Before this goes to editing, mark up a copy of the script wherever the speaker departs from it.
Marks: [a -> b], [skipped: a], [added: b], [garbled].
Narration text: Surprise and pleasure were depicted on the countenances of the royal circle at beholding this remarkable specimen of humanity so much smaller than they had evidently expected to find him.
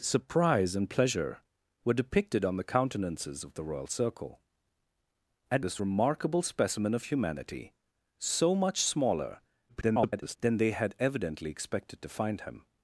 Surprise and pleasure were depicted on the countenances of the royal circle at [skipped: beholding] this remarkable specimen of humanity so much smaller [garbled] than they had evidently expected to find him.